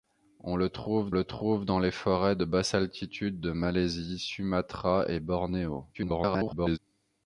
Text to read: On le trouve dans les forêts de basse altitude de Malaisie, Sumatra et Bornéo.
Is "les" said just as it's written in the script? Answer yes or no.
yes